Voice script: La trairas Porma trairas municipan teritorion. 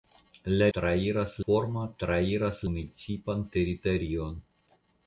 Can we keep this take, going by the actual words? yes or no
yes